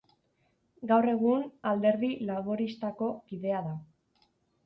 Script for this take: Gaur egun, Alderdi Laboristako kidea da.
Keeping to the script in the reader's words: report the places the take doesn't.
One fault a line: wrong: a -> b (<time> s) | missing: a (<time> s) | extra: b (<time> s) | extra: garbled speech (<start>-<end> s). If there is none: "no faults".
no faults